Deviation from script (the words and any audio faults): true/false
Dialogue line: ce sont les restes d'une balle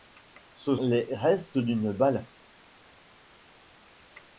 true